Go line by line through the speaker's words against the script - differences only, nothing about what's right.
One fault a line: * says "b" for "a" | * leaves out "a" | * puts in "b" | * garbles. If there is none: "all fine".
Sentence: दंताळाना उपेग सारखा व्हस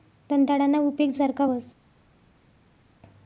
all fine